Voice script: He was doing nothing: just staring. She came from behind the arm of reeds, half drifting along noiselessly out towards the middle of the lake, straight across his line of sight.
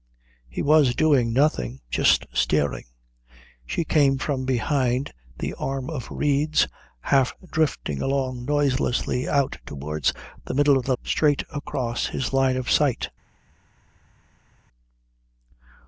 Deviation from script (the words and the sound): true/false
true